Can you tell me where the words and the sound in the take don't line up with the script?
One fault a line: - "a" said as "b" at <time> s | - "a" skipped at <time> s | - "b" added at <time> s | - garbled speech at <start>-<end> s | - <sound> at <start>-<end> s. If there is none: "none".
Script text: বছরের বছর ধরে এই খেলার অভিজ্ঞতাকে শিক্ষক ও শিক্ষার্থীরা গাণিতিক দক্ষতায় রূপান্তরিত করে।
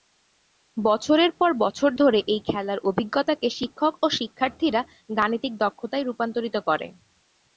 - "পর" added at 1.4 s